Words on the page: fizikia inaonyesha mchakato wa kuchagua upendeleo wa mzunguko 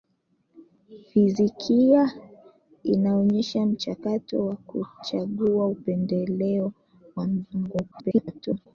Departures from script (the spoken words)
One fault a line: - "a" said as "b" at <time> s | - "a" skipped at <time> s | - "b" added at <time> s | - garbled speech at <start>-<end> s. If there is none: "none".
- garbled speech at 7.9-8.7 s